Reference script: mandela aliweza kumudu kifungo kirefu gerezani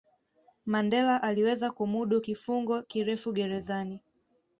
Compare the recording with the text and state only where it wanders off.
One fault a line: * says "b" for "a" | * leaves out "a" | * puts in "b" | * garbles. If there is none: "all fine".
all fine